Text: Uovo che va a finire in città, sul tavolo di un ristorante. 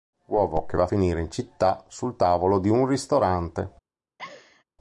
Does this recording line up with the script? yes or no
yes